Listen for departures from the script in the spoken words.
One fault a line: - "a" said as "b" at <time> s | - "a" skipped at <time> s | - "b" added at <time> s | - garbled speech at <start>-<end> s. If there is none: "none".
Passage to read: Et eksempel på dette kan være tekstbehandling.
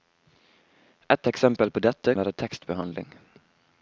- "kan" skipped at 2.1 s